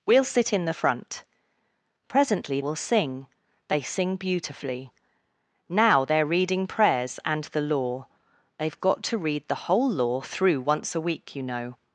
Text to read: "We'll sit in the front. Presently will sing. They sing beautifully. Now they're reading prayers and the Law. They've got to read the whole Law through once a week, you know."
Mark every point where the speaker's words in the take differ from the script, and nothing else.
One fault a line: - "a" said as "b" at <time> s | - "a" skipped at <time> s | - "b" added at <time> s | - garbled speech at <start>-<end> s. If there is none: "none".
none